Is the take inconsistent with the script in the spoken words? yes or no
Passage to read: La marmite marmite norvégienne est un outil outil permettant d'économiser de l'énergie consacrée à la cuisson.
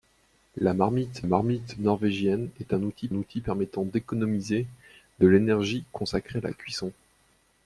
no